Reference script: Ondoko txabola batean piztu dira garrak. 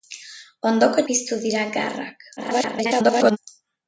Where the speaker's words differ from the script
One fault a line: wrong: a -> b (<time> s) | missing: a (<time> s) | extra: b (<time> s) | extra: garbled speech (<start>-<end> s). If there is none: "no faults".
missing: txabola batean (1.0 s)
extra: garbled speech (2.4-3.4 s)